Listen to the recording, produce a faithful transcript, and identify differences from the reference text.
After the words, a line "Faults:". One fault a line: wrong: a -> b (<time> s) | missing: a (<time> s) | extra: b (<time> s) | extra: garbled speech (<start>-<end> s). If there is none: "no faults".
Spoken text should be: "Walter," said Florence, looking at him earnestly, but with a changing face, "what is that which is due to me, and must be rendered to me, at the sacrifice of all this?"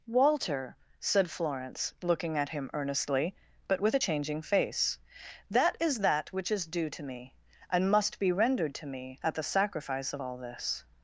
"Walter," said Florence, looking at him earnestly, but with a changing face, "that is that which is due to me, and must be rendered to me, at the sacrifice of all this?"
Faults:
wrong: what -> that (5.5 s)